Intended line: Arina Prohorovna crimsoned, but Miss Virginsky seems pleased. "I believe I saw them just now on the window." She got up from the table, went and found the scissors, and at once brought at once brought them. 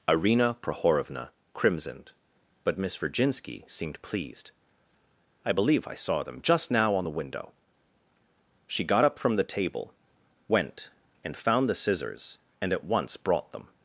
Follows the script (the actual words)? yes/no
no